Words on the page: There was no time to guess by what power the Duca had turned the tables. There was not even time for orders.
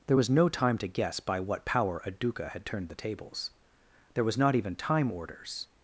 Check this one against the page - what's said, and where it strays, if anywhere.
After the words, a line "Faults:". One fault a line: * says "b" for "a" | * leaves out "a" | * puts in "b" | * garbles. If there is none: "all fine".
There was no time to guess by what power a Duca had turned the tables. There was not even time orders.
Faults:
* says "a" for "the"
* leaves out "for"